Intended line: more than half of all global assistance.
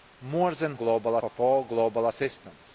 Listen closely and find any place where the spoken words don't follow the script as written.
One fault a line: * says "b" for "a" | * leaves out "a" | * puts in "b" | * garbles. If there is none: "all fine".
* says "global" for "half"